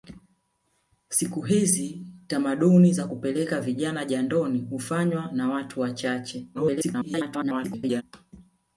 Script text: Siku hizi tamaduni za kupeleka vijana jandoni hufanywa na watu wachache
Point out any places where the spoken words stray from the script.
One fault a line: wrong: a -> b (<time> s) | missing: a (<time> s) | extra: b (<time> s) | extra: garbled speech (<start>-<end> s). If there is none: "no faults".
extra: garbled speech (6.5-8.0 s)